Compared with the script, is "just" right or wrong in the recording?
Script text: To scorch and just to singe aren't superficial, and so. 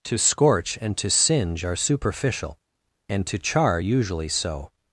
wrong